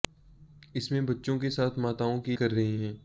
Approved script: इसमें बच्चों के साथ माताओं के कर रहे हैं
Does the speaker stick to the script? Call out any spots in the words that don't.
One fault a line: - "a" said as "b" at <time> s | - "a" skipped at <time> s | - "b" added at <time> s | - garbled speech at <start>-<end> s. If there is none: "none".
none